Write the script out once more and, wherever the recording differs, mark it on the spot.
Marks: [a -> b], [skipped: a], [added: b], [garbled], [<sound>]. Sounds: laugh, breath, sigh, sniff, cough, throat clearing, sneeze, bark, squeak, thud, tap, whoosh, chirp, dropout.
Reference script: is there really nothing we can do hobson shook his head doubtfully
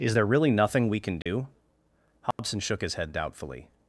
is there really nothing we can do [dropout] hobson [dropout] shook his head doubtfully